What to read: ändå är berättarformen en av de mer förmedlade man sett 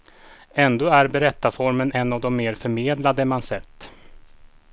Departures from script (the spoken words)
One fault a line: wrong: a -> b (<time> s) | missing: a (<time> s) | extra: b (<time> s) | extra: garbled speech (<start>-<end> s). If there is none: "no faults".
no faults